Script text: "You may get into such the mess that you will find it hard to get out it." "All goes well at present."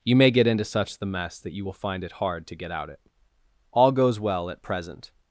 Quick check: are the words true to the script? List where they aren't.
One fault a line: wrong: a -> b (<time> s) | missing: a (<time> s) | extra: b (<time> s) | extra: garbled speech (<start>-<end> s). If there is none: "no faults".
no faults